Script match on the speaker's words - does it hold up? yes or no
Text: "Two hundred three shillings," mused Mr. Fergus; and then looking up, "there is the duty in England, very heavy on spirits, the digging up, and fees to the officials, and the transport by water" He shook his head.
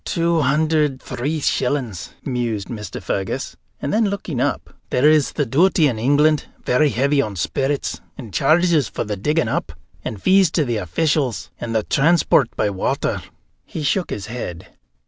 no